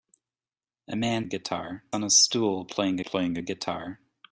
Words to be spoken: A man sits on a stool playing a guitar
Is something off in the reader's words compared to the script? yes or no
yes